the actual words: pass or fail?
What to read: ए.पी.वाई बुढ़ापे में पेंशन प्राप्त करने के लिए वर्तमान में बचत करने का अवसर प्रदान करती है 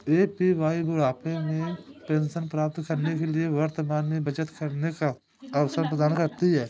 pass